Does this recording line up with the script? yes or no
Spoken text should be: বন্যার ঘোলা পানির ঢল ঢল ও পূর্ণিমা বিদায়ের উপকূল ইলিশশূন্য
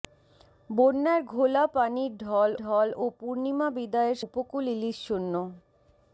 yes